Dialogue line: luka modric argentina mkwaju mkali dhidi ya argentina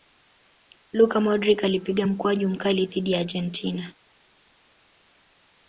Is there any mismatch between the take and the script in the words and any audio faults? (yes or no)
yes